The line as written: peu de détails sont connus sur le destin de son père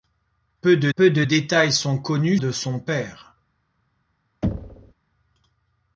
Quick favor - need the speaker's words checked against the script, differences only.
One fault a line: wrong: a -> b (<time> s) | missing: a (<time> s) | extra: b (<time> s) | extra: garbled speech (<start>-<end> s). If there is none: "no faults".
extra: peu de (1.0 s)
missing: sur le destin (2.4 s)